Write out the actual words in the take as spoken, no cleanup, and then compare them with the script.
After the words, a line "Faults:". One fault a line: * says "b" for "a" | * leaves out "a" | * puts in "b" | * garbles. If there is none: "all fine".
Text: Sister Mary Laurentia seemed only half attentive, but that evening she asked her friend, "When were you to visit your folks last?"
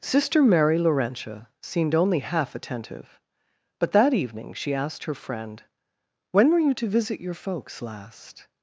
Sister Mary Laurentia seemed only half attentive, but that evening she asked her friend, "When were you to visit your folks last?"
Faults:
all fine